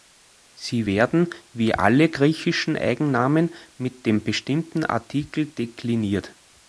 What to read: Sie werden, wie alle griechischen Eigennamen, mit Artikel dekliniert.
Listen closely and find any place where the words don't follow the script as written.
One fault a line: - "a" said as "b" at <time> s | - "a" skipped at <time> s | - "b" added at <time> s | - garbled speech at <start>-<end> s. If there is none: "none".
- "dem bestimmten" added at 4.1 s